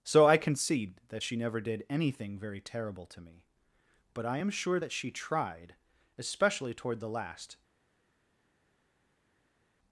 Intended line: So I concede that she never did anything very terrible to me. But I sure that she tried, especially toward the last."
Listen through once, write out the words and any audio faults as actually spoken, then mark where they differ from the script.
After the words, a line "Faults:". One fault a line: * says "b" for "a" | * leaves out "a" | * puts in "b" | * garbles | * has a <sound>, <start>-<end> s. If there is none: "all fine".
So I concede that she never did anything very terrible to me. But I am sure that she tried, especially toward the last."
Faults:
* puts in "am"